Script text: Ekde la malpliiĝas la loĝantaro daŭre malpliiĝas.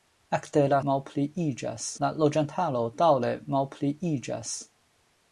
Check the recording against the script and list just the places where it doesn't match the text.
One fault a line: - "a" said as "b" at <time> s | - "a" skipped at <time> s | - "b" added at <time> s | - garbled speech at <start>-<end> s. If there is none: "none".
none